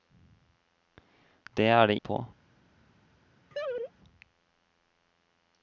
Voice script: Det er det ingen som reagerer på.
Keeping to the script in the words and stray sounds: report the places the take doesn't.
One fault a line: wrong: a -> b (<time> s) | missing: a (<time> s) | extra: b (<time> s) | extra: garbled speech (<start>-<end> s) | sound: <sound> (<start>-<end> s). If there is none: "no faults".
missing: ingen som reagerer (2.0 s)
sound: laugh (3.5-3.9 s)